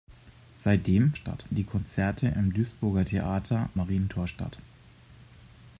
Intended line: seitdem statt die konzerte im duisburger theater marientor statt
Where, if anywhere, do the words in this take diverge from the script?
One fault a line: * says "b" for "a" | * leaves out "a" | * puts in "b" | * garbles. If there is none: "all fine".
all fine